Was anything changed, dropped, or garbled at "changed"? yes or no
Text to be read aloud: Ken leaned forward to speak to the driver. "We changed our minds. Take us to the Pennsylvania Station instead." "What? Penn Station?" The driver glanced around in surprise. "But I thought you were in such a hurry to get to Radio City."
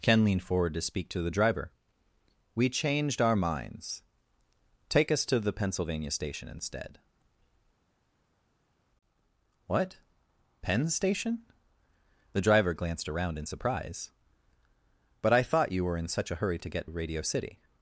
no